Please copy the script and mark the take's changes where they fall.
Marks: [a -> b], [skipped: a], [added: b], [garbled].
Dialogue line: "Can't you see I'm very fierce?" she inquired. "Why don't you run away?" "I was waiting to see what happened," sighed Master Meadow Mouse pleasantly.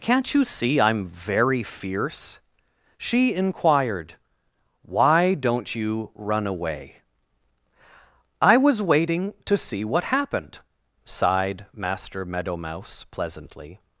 "Can't you see I'm very fierce?" she inquired. "Why don't you run away?" "I was waiting to see what happened," sighed Master Meadow Mouse pleasantly.